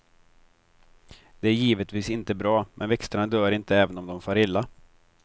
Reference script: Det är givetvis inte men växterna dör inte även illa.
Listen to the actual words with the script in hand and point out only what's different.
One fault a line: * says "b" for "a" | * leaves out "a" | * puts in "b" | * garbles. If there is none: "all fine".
* puts in "bra"
* puts in "om de far"